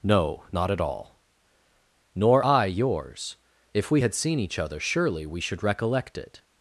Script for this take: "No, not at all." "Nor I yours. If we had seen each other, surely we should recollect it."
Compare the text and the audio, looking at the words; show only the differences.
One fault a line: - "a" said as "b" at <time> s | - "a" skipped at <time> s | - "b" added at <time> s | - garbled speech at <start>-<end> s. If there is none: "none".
none